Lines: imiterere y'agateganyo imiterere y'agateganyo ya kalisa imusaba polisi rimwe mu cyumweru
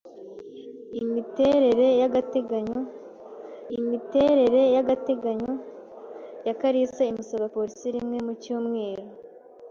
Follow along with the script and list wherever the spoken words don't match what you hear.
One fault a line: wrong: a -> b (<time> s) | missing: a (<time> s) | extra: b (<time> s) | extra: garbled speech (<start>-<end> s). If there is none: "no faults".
no faults